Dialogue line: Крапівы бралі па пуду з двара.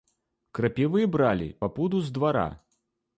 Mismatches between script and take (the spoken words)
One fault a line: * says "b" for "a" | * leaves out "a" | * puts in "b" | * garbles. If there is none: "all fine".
all fine